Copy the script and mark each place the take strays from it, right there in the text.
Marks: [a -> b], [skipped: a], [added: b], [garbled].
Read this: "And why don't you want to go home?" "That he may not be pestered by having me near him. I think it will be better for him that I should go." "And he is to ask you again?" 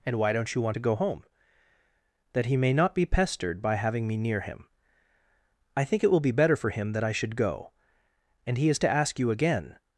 "And why don't you want to go home?" "That he may not be pestered by having me near him. I think it will be better for him that I should go." "And he is to ask you again?"